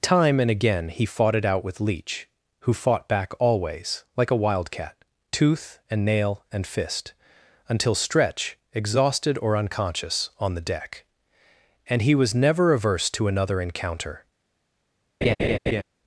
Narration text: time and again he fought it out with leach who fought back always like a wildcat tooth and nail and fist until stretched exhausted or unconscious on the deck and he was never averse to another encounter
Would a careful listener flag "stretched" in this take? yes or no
yes